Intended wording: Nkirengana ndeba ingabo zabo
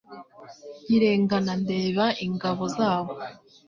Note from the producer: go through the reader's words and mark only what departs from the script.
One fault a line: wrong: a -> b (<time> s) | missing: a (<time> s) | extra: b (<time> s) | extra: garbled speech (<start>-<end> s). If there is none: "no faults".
no faults